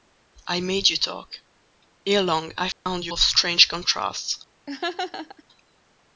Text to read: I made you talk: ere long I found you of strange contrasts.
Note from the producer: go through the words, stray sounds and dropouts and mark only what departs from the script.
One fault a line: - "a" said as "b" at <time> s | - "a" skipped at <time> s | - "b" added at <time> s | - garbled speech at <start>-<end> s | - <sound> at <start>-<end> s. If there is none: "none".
- dropout at 2.7-2.9 s
- laugh at 4.7-5.4 s